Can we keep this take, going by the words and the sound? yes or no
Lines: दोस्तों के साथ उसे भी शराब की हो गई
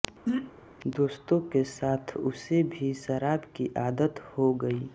no